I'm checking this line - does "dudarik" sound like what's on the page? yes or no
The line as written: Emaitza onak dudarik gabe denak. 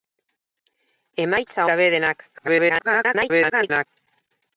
no